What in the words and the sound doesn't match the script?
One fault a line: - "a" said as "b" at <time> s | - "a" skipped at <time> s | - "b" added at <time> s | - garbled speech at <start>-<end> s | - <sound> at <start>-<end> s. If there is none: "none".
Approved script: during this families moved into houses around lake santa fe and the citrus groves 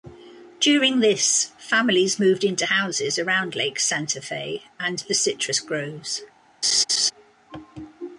- laugh at 6.6-7.1 s